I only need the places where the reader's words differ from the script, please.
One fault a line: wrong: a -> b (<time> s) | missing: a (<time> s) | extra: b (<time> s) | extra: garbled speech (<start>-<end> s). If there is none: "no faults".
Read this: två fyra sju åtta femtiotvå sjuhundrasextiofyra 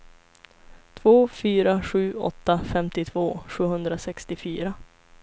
no faults